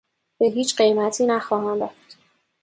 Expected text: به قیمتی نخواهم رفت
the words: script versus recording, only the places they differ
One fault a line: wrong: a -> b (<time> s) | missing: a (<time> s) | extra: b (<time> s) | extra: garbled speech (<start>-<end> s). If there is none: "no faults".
extra: هیچ (0.4 s)